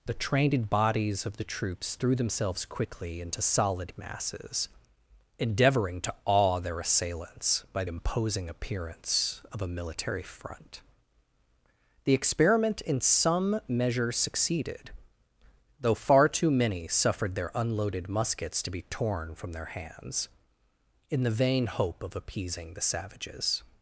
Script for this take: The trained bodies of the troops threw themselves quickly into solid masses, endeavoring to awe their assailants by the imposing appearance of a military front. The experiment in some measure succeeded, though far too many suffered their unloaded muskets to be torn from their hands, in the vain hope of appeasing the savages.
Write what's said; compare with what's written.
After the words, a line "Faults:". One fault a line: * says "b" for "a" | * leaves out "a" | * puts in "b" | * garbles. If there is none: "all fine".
The trained bodies of the troops threw themselves quickly into solid masses, endeavoring to awe their assailants by imposing appearance of a military front. The experiment in some measure succeeded, though far too many suffered their unloaded muskets to be torn from their hands, in the vain hope of appeasing the savages.
Faults:
* leaves out "the"